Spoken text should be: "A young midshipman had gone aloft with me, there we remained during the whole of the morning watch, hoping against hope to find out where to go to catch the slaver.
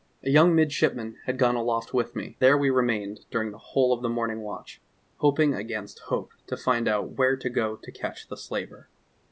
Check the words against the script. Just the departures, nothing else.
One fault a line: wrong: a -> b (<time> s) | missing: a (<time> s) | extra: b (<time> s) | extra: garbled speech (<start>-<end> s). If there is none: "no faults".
no faults